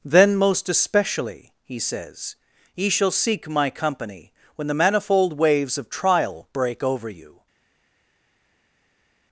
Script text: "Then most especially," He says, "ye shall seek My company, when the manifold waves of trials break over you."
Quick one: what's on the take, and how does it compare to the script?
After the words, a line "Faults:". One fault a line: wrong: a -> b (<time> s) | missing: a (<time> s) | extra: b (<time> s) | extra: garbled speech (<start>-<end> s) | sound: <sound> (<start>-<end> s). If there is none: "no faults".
"Then most especially," He says, "ye shall seek My company, when the manifold waves of trial break over you."
Faults:
wrong: trials -> trial (5.9 s)